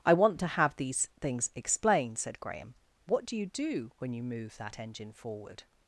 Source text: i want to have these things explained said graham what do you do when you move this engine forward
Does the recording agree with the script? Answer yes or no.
no